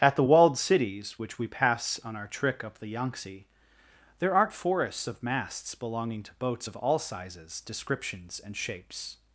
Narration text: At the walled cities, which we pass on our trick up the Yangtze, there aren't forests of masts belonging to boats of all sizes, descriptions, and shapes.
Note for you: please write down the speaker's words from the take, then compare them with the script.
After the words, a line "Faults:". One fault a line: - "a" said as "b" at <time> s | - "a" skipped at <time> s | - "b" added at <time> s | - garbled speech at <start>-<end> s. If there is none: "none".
At the walled cities, which we pass on our trick up the Yangtze, there aren't forests of masts belonging to boats of all sizes, descriptions, and shapes.
Faults:
none